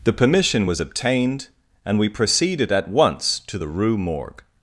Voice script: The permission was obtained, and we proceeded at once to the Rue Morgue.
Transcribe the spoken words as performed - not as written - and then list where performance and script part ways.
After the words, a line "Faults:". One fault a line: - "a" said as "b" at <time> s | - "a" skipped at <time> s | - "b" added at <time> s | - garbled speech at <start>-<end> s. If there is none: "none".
The permission was obtained, and we proceeded at once to the Rue Morgue.
Faults:
none